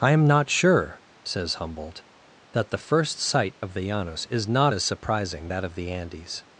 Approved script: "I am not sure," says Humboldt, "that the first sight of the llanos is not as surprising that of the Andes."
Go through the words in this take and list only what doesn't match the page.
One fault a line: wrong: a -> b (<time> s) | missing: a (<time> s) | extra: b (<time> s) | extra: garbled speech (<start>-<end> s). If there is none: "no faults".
no faults